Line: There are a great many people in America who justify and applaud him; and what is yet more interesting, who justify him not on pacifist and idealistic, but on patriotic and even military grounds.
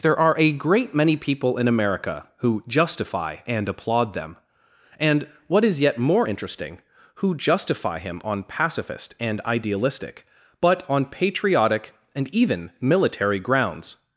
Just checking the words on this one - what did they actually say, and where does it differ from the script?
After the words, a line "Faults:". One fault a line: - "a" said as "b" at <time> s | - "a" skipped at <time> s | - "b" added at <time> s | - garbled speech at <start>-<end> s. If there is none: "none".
There are a great many people in America who justify and applaud them; and what is yet more interesting, who justify him on pacifist and idealistic, but on patriotic and even military grounds.
Faults:
- "him" said as "them" at 4.1 s
- "not" skipped at 8.2 s